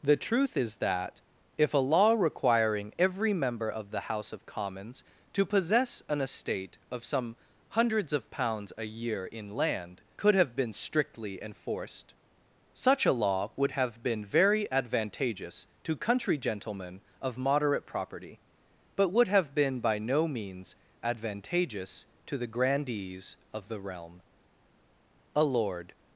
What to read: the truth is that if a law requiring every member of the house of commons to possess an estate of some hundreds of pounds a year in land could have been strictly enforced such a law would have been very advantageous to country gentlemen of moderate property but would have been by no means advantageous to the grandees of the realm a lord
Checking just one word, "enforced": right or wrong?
right